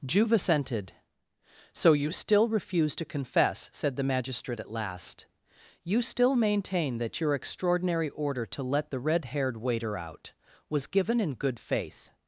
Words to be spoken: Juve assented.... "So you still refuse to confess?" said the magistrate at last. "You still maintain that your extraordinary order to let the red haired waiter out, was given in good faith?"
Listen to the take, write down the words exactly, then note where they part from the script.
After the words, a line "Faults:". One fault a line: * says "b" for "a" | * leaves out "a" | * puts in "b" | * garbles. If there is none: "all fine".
Juve assented.... "So you still refuse to confess?" said the magistrate at last. "You still maintain that your extraordinary order to let the red haired waiter out, was given in good faith?"
Faults:
all fine